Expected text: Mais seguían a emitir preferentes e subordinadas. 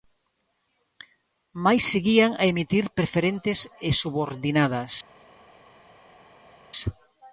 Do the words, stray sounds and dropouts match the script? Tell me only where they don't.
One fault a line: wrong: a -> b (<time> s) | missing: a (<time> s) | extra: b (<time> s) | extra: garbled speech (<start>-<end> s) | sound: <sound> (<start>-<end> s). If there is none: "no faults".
no faults